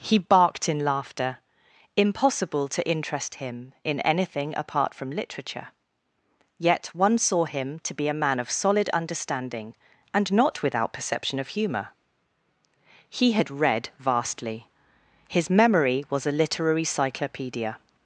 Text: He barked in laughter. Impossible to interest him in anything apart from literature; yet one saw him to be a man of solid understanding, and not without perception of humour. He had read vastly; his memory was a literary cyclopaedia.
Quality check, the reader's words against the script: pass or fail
pass